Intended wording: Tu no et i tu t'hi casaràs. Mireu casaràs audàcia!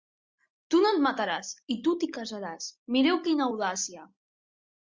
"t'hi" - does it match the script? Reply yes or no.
yes